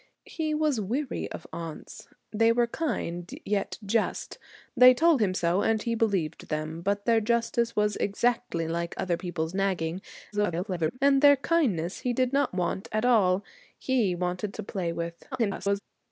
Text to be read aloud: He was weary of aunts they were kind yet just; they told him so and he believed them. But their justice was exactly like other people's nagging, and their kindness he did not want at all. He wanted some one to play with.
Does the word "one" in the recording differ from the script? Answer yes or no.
yes